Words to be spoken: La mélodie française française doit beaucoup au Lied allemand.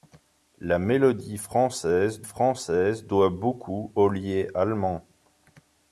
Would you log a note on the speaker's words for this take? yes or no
no